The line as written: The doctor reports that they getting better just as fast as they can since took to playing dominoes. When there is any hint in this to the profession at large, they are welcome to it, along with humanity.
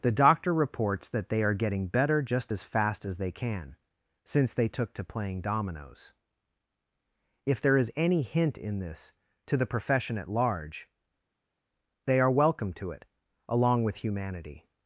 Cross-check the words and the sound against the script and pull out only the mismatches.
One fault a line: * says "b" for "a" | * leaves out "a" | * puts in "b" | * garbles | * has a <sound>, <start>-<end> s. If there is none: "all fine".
* puts in "are"
* puts in "they"
* says "If" for "When"